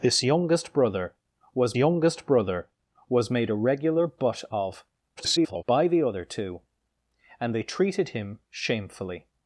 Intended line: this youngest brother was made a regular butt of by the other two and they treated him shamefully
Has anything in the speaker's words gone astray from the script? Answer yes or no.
yes